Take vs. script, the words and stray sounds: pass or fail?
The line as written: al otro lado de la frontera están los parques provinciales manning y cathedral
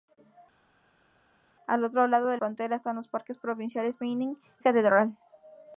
fail